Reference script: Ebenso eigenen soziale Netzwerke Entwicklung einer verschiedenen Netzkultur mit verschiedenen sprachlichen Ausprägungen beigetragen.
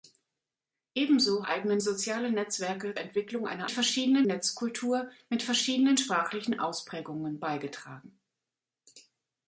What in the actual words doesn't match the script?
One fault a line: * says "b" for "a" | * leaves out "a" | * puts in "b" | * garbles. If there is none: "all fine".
all fine